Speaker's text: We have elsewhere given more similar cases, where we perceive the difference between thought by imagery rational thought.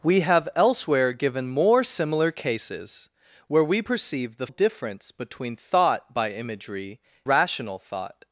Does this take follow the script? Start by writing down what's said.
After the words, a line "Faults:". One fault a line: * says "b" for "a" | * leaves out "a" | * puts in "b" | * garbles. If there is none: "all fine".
We have elsewhere given more similar cases, where we perceive the difference between thought by imagery rational thought.
Faults:
all fine